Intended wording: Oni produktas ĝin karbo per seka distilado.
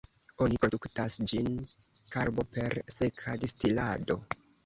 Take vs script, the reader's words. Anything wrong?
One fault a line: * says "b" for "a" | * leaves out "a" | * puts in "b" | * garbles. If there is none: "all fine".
all fine